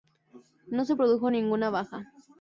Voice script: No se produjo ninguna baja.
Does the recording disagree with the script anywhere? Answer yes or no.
no